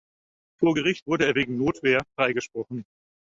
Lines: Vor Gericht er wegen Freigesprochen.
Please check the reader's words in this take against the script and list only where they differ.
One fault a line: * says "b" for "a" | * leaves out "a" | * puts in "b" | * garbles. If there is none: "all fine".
* puts in "wurde"
* puts in "Notwehr"